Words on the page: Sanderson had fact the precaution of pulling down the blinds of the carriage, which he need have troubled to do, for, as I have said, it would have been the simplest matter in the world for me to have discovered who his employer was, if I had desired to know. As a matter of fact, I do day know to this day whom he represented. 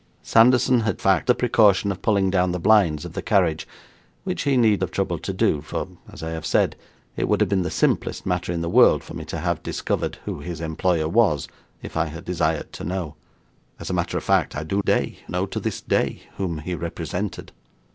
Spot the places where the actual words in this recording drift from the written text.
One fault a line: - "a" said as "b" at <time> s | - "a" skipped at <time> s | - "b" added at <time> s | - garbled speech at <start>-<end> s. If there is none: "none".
none